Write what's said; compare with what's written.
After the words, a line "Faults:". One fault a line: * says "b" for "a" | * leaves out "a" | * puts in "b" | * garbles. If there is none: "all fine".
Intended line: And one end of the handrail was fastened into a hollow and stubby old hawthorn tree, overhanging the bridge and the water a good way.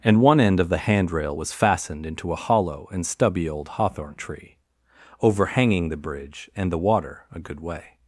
And one end of the handrail was fastened into a hollow and stubby old hawthorn tree, overhanging the bridge and the water a good way.
Faults:
all fine